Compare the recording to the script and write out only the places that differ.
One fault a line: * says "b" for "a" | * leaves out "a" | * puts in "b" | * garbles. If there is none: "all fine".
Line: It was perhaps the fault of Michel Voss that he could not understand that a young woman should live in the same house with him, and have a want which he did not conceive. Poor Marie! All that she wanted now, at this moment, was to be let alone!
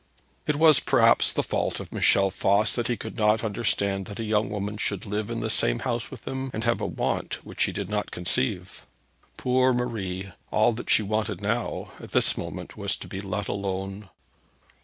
all fine